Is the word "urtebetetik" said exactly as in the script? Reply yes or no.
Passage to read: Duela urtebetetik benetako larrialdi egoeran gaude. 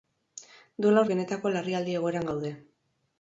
no